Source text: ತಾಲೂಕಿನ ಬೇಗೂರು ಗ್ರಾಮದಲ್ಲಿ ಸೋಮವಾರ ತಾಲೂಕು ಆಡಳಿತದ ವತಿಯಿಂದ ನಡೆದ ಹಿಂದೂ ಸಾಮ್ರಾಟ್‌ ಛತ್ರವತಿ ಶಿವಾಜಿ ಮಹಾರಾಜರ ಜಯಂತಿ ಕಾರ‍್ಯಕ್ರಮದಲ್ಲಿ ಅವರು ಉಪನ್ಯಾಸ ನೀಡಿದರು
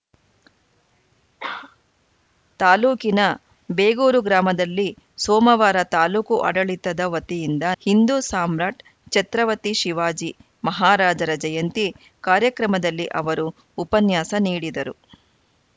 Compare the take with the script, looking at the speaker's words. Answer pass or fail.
fail